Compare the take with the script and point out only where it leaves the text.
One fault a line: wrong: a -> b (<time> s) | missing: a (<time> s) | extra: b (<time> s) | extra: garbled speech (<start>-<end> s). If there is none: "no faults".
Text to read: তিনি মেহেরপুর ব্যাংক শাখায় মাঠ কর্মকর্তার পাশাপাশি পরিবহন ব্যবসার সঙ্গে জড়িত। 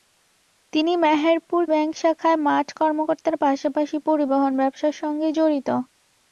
no faults